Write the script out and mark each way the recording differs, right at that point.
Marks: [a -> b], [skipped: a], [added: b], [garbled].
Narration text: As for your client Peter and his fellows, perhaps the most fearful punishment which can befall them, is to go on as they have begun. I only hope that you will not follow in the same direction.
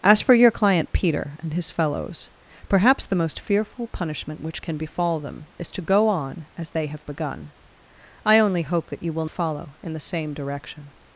As for your client Peter and his fellows, perhaps the most fearful punishment which can befall them, is to go on as they have begun. I only hope that you will [skipped: not] follow in the same direction.